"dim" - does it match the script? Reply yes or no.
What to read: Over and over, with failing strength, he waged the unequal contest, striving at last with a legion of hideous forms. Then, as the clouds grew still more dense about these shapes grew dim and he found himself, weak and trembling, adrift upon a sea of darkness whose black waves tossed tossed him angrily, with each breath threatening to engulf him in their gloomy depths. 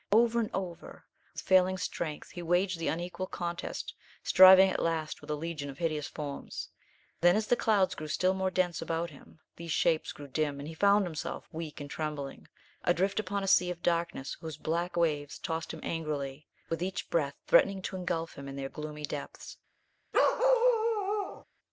yes